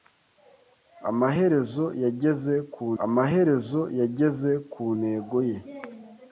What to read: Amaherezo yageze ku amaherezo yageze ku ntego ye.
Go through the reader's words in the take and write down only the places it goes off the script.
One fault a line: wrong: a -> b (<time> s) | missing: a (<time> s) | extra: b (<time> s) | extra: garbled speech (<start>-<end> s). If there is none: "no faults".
no faults